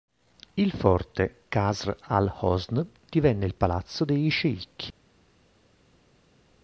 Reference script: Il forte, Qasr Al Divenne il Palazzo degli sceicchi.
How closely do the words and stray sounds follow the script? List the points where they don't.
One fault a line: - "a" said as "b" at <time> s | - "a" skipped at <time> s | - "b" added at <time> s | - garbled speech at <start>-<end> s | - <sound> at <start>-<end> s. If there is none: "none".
- "Hosn" added at 2.4 s